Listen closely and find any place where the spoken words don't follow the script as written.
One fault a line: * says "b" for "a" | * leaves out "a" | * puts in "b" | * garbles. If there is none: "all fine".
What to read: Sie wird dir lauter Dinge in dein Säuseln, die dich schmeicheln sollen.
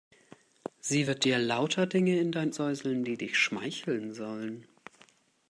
all fine